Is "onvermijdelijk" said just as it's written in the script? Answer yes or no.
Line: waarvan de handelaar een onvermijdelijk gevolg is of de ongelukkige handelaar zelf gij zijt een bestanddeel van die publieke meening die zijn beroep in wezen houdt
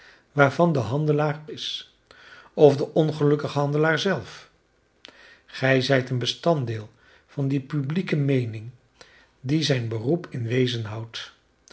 no